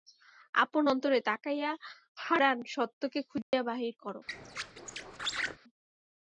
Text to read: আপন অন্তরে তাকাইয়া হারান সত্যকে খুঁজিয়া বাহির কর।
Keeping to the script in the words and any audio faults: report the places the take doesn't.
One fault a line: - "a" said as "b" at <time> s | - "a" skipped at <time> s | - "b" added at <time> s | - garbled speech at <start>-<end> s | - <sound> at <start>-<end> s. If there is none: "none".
- dropout at 3.4-3.5 s
- squeak at 4.3-5.6 s